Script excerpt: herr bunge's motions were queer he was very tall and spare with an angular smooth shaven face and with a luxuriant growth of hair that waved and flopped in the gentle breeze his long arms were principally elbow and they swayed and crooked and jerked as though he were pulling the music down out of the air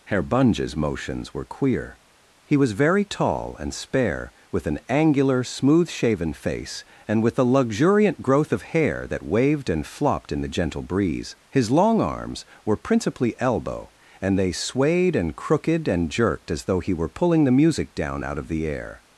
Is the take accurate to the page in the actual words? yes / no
yes